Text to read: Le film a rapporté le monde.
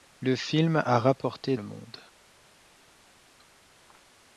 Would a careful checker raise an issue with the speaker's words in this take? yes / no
no